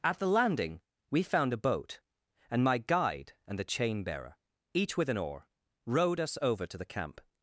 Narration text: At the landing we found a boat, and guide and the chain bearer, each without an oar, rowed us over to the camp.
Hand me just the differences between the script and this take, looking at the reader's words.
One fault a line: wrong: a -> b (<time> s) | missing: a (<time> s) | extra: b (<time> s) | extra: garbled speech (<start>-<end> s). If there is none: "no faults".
extra: my (2.6 s)
wrong: without -> with (5.0 s)